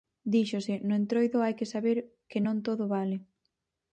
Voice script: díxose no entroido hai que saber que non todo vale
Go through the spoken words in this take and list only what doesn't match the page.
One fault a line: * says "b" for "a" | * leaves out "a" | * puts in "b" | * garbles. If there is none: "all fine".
all fine